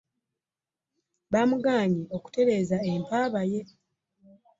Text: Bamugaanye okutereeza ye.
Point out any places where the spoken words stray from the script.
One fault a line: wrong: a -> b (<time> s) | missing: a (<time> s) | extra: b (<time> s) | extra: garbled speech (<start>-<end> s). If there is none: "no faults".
extra: empaaba (2.9 s)